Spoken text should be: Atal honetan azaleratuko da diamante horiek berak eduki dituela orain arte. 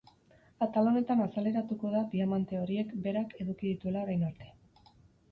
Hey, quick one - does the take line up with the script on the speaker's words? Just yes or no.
yes